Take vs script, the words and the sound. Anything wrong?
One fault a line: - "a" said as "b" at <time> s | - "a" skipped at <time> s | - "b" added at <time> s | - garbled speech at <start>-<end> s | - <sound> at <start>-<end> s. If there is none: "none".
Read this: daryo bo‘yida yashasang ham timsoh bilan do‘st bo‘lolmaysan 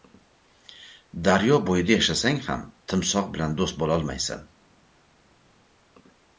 none